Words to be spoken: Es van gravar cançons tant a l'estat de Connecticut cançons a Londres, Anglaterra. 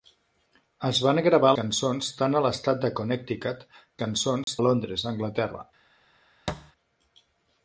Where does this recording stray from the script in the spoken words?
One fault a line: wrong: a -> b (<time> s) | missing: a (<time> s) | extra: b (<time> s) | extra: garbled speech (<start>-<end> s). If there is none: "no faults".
no faults